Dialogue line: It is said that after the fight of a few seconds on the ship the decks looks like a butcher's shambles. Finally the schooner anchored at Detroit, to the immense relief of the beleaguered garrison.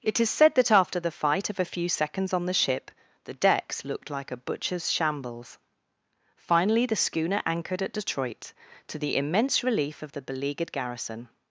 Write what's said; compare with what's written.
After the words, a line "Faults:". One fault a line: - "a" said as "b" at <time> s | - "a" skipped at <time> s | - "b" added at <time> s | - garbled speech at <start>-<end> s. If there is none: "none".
It is said that after the fight of a few seconds on the ship the decks looked like a butcher's shambles. Finally the schooner anchored at Detroit, to the immense relief of the beleaguered garrison.
Faults:
- "looks" said as "looked" at 3.9 s